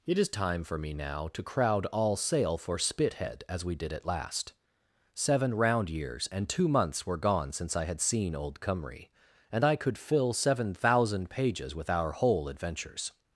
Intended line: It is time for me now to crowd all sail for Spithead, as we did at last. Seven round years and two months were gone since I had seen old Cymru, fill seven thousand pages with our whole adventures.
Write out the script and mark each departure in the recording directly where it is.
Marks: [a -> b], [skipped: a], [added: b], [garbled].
It is time for me now to crowd all sail for Spithead, as we did at last. Seven round years and two months were gone since I had seen old Cymru, [added: and I could] fill seven thousand pages with our whole adventures.